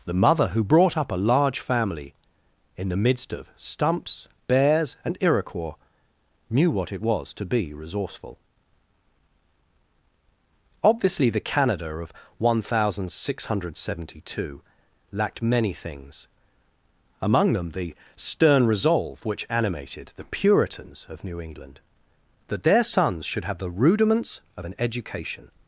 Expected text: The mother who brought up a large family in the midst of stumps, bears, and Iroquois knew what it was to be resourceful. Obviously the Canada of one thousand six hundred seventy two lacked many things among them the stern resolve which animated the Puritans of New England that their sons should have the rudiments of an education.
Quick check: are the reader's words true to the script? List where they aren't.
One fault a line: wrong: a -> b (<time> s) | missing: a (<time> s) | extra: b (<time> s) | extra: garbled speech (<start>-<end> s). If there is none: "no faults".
no faults